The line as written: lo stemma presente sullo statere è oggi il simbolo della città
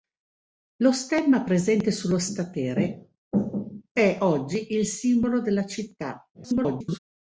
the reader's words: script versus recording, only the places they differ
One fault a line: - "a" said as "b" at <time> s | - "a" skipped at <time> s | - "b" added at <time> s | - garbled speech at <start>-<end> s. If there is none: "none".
- garbled speech at 6.3-7.0 s